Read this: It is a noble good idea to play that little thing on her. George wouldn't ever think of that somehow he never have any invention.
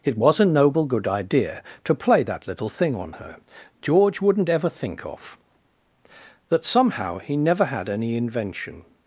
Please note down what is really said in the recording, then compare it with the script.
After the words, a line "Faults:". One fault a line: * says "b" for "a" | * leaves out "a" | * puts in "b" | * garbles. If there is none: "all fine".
It was a noble good idea to play that little thing on her. George wouldn't ever think of that somehow he never had any invention.
Faults:
* says "was" for "is"
* says "had" for "have"